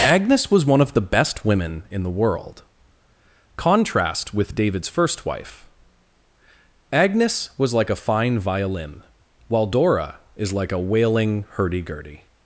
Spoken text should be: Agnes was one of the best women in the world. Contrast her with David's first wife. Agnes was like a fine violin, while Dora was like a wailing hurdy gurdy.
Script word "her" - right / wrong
wrong